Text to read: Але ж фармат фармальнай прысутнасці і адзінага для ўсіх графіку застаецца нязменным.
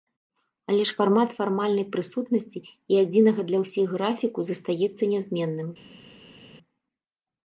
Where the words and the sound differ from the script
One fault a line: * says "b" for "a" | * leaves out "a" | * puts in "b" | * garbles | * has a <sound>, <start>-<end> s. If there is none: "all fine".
all fine